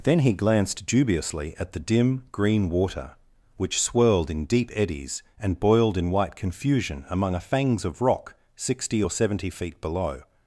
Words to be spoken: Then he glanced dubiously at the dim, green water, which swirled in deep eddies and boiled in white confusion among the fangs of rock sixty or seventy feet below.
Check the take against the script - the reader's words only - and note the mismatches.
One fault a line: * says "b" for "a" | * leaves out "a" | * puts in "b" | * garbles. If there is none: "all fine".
* says "a" for "the"